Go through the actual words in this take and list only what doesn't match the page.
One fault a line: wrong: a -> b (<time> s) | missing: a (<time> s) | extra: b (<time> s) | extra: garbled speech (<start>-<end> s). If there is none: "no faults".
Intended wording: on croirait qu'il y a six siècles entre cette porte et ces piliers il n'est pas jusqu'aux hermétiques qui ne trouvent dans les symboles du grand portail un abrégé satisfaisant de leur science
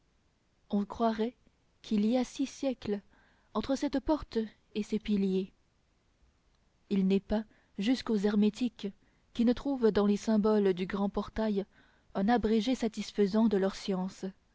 no faults